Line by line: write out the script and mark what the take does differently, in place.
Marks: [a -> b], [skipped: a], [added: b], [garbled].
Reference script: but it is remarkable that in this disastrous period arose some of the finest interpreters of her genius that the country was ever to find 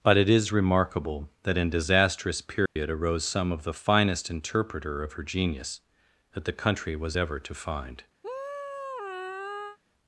but it is remarkable that in [skipped: this] disastrous period arose some of the finest [interpreters -> interpreter] of her genius that the country was ever to find